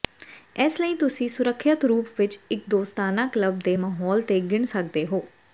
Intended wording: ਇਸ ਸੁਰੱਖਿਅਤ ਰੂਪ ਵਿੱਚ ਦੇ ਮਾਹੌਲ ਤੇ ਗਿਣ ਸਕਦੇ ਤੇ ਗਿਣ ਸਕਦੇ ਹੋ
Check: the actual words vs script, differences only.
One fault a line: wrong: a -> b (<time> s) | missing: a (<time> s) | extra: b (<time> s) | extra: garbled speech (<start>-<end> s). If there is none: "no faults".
extra: ਲਈ ਤੁਸੀਂ (0.8 s)
wrong: ਦੇ ਮਾਹੌਲ ਤੇ ਗਿਣ ਸਕਦੇ -> ਇੱਕ ਦੋਸਤਾਨਾ ਕਲੱਬ ਦੇ ਮਾਹੌਲ (2.5 s)